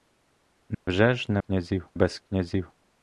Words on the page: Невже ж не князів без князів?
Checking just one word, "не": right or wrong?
right